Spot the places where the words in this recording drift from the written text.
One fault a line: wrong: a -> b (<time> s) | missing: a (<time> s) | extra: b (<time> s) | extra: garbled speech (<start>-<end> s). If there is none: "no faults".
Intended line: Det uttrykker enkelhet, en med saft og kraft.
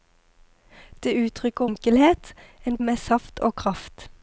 no faults